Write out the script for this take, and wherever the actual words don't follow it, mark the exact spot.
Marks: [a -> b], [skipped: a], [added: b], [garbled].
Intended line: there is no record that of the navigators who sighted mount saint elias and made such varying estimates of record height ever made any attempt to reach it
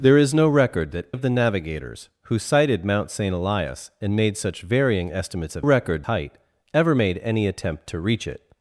there is no record that of the navigators who sighted mount saint elias and made such varying estimates of record height ever made any attempt to reach it